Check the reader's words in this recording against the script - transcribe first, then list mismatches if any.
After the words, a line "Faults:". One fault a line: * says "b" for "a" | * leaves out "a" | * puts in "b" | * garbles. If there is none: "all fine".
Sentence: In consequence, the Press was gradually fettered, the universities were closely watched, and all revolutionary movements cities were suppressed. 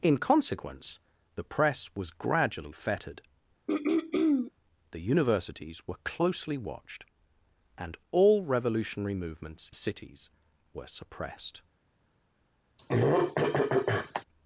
In consequence, the Press was gradually fettered, the universities were closely watched, and all revolutionary movements cities were suppressed.
Faults:
all fine